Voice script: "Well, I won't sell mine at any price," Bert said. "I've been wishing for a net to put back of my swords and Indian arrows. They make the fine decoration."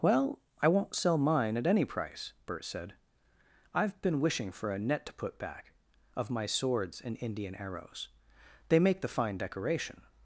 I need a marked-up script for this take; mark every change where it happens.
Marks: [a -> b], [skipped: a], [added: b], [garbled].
"Well, I won't sell mine at any price," Bert said. "I've been wishing for a net to put back of my swords and Indian arrows. They make the fine decoration."